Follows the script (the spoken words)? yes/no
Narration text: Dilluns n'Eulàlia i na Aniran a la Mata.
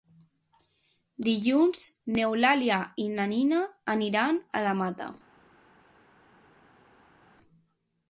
no